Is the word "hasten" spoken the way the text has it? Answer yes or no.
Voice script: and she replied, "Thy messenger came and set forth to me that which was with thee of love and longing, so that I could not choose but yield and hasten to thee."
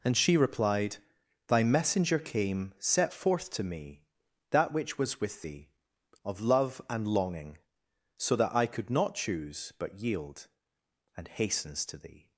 no